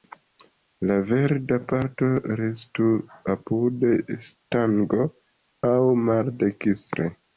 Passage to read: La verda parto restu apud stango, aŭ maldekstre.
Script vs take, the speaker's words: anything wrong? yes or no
no